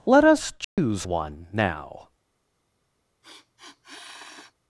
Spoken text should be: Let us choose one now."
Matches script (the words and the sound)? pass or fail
fail